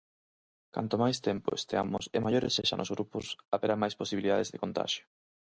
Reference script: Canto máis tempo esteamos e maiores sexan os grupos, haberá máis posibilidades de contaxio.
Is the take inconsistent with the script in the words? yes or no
no